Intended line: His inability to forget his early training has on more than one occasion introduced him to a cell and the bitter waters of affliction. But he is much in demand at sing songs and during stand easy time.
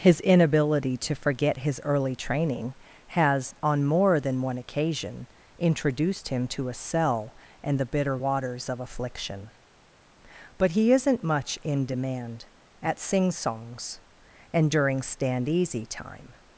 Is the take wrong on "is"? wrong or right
wrong